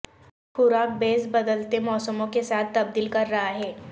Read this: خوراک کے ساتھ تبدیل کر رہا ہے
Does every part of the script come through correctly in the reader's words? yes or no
no